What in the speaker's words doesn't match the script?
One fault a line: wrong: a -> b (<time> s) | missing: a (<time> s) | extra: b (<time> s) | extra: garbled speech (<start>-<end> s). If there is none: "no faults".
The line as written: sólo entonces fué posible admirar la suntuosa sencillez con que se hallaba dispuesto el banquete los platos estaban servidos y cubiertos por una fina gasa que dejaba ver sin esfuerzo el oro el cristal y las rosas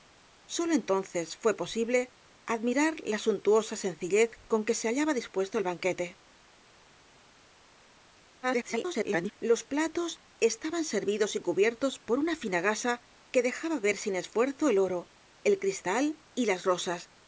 extra: garbled speech (8.4-9.3 s)